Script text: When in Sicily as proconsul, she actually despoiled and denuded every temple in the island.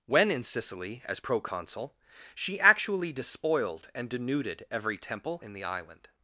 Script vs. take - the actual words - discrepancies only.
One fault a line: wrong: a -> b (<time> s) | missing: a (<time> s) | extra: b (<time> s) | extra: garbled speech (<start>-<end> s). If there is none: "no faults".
no faults